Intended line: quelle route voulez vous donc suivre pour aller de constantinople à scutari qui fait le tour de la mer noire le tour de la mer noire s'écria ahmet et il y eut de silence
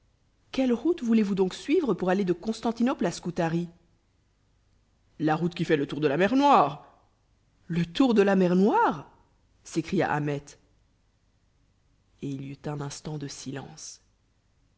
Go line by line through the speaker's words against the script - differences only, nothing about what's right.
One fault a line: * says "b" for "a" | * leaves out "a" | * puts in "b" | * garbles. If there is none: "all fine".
* puts in "la route"
* puts in "un instant"